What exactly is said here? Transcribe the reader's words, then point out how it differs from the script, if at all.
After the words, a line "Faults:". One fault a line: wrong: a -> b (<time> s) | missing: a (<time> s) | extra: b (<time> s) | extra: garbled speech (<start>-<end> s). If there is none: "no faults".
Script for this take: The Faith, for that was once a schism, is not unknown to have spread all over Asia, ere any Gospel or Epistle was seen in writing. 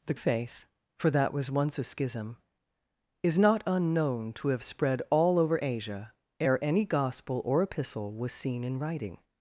The Faith, for that was once a schism, is not unknown to have spread all over Asia, ere any Gospel or Epistle was seen in writing.
Faults:
no faults